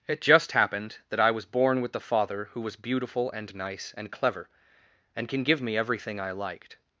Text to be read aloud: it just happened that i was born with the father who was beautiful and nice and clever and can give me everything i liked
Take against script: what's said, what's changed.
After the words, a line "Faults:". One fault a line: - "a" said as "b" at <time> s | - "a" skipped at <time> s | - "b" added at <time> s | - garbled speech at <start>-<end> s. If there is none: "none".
it just happened that i was born with the father who was beautiful and nice and clever and can give me everything i liked
Faults:
none